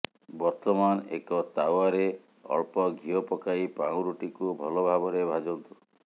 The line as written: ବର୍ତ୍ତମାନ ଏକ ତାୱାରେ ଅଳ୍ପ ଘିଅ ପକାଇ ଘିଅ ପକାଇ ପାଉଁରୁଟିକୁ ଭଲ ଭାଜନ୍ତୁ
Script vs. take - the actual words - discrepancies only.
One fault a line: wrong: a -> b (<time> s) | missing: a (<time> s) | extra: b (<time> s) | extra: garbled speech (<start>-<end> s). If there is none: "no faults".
missing: ଘିଅ ପକାଇ (3.7 s)
extra: ଭାବରେ (4.9 s)